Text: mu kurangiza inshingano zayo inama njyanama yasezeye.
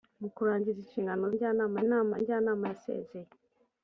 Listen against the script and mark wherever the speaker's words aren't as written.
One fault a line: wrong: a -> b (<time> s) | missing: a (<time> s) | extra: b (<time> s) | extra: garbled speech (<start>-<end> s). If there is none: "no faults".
wrong: zayo -> njyanama (1.3 s)